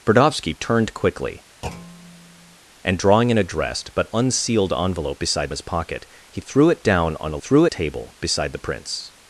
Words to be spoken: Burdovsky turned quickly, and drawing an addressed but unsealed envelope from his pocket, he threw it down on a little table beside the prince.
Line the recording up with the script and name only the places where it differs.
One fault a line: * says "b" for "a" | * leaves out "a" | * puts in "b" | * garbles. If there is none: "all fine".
* says "beside" for "from"
* says "threw" for "little"